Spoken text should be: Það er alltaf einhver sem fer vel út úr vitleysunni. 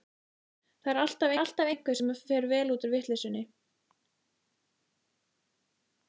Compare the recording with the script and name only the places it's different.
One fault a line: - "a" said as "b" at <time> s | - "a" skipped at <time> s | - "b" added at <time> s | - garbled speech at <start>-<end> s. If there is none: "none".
- "alltaf" added at 1.4 s